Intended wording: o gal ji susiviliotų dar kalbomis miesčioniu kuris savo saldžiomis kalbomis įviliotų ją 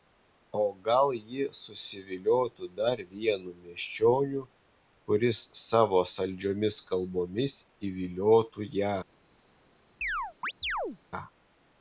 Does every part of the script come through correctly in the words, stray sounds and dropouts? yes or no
no